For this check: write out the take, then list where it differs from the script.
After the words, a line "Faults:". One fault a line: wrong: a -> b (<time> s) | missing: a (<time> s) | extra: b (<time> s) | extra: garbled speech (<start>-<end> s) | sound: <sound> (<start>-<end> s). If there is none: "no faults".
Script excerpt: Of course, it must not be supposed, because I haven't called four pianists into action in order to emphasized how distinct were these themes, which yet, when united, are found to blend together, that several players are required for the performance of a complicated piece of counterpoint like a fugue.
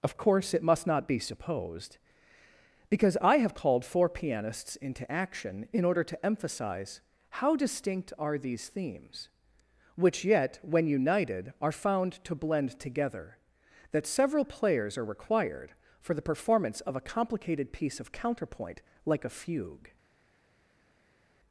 Of course, it must not be supposed, because I have called four pianists into action in order to emphasize how distinct are these themes, which yet, when united, are found to blend together, that several players are required for the performance of a complicated piece of counterpoint like a fugue.
Faults:
wrong: haven't -> have (3.4 s)
wrong: emphasized -> emphasize (6.2 s)
wrong: were -> are (8.2 s)